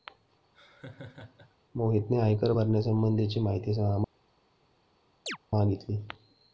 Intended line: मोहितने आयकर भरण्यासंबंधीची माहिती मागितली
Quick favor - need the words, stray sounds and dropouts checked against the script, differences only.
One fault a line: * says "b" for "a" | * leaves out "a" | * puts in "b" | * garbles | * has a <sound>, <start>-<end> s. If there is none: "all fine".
* has a laugh, 0.5-1.6 s
* has a chirp, 5.3-5.4 s